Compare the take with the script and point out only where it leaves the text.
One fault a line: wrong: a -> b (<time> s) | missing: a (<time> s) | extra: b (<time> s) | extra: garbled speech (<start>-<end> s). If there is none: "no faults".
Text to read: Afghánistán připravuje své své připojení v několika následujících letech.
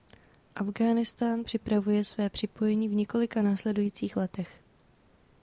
missing: své (2.3 s)